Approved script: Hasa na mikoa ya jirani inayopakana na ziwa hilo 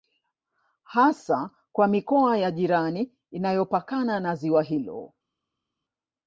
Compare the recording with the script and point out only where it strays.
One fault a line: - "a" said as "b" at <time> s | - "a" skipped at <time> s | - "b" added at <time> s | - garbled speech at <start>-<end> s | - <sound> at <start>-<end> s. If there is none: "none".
- "na" said as "kwa" at 1.7 s